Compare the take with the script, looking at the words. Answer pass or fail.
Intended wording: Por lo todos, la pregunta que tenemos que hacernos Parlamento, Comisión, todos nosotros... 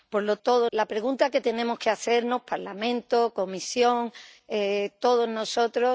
pass